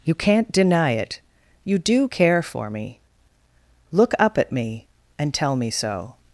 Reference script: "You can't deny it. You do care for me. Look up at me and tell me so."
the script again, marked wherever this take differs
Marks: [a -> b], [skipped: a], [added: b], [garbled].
"You can't deny it. You do care for me. Look up at me and tell me so."